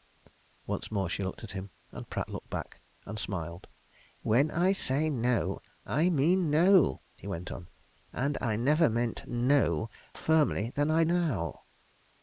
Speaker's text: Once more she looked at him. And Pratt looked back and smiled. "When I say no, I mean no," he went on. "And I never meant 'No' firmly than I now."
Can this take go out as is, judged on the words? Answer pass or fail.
pass